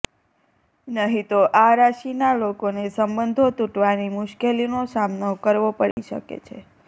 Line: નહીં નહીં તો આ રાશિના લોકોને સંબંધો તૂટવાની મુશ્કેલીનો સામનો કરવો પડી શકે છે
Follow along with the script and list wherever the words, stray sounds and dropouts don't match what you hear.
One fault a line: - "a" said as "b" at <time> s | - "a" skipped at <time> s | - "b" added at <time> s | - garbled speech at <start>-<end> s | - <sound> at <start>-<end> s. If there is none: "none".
- "નહીં" skipped at 1.3 s
- dropout at 5.9-6.0 s